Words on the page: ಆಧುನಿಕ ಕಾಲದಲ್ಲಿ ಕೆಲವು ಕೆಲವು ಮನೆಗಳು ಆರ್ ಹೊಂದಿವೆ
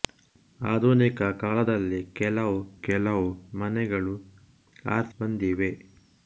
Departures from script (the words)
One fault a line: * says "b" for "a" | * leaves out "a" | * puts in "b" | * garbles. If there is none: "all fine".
all fine